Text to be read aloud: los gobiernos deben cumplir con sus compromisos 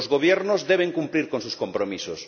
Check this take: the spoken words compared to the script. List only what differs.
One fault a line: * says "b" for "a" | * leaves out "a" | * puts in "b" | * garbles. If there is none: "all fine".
all fine